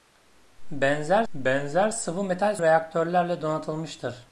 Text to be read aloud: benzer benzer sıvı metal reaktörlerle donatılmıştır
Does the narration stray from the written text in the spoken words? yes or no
no